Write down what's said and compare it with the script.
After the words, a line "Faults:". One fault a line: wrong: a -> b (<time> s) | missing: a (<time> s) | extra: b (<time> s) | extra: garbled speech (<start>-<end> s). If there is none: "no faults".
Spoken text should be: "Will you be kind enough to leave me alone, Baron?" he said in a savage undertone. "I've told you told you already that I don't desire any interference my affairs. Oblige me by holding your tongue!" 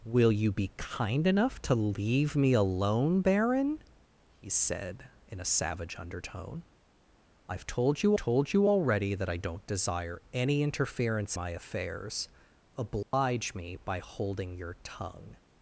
"Will you be kind enough to leave me alone, Baron?" he said in a savage undertone. "I've told you told you already that I don't desire any interference my affairs. Oblige me by holding your tongue!"
Faults:
no faults